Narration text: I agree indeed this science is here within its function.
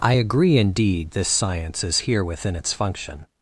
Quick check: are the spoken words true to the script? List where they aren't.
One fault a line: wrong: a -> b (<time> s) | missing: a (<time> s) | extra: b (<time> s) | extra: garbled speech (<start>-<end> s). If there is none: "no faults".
no faults